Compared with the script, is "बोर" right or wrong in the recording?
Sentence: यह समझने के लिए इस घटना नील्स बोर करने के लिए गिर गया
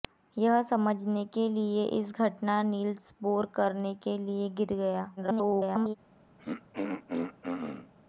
right